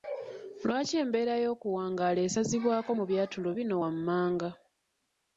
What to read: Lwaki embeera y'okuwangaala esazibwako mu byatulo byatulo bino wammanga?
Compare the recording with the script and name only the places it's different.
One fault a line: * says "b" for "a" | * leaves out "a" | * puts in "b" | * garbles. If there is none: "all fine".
* leaves out "byatulo"